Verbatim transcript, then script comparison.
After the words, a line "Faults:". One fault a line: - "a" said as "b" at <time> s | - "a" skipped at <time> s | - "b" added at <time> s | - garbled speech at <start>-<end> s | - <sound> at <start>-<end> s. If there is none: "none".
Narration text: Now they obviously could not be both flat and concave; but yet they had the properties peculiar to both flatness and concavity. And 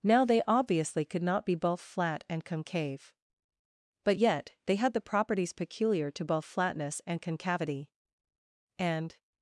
Now they obviously could not be both flat and concave; but yet they had the properties peculiar to both flatness and concavity. And
Faults:
none